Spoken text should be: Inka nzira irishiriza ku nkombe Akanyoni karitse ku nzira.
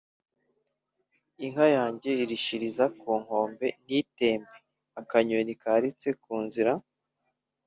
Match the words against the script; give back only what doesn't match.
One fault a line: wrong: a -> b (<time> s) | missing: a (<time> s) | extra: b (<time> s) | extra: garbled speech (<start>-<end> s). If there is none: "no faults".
wrong: nzira -> yanjye (1.8 s)
extra: ntitembe (3.8 s)